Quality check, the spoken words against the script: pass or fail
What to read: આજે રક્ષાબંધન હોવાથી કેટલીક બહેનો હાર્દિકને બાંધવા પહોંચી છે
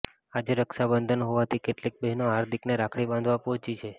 fail